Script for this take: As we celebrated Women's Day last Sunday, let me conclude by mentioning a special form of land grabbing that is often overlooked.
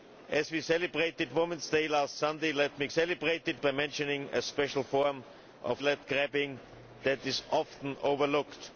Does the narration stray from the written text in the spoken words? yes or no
yes